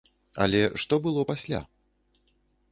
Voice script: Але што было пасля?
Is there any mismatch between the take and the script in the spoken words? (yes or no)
no